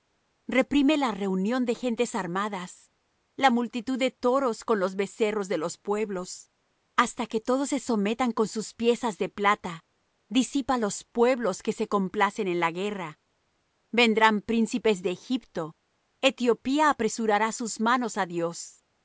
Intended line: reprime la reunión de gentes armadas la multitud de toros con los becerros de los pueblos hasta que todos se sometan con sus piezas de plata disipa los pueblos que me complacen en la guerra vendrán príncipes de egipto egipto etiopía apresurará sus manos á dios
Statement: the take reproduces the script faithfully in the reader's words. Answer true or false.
false